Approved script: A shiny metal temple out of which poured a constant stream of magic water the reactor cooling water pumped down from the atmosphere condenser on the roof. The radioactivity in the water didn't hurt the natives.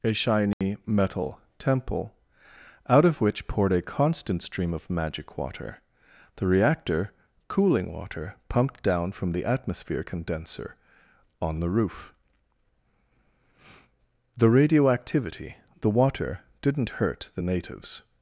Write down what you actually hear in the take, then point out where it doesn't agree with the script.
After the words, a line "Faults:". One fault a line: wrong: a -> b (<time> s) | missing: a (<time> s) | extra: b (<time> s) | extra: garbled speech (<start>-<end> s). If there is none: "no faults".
A shiny metal temple out of which poured a constant stream of magic water the reactor cooling water pumped down from the atmosphere condenser on the roof. The radioactivity the water didn't hurt the natives.
Faults:
missing: in (15.6 s)